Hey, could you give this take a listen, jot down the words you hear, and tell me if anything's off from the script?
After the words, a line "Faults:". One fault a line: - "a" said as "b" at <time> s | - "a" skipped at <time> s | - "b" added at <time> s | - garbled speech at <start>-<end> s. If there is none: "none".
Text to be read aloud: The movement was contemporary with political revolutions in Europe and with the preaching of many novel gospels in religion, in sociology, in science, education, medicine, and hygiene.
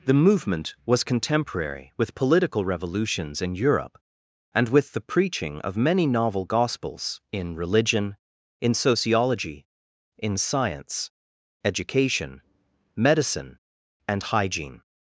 The movement was contemporary with political revolutions in Europe and with the preaching of many novel gospels in religion, in sociology, in science, education, medicine, and hygiene.
Faults:
none